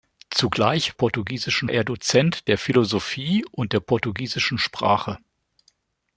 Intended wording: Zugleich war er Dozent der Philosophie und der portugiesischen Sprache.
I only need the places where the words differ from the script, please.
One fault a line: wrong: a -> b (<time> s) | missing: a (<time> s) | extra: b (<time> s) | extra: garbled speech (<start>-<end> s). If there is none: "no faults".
wrong: war -> portugiesischen (0.9 s)